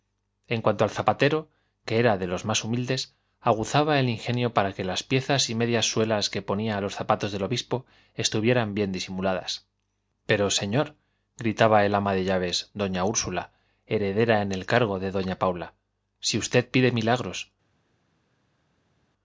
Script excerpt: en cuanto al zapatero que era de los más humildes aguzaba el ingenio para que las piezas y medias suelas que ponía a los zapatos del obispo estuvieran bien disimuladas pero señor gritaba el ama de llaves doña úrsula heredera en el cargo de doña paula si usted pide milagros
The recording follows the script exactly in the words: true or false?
true